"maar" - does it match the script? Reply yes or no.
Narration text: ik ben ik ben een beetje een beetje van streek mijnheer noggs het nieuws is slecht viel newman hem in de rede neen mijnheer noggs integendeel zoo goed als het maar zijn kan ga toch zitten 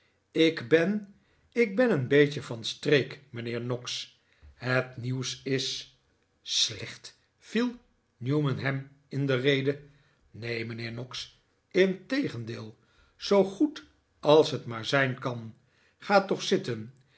yes